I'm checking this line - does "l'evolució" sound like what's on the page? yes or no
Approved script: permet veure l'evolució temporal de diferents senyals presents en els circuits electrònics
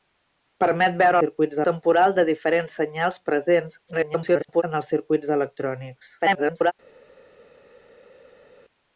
no